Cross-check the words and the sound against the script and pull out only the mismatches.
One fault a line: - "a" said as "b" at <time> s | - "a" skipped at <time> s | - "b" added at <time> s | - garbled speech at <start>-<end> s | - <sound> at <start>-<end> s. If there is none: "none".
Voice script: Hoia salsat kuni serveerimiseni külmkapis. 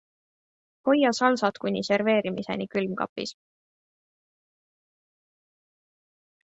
none